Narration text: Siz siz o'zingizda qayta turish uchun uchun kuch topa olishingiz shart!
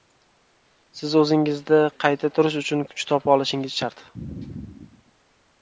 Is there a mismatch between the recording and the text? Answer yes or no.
yes